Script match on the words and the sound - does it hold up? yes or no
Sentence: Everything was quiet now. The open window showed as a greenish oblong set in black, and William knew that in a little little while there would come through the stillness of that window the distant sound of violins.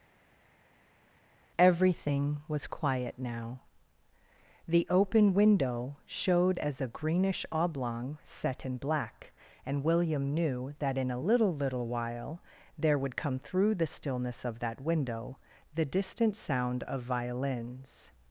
yes